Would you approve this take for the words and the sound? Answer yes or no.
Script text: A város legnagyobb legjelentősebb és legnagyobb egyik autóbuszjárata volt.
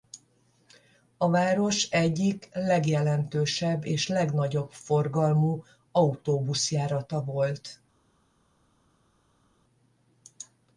no